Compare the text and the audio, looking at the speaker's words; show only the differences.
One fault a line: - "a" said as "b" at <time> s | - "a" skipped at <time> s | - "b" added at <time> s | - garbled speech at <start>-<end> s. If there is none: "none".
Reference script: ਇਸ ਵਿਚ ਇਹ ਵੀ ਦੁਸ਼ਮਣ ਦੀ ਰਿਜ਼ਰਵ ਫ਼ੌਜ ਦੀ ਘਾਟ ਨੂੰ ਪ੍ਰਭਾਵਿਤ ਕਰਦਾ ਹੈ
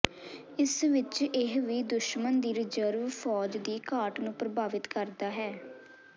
none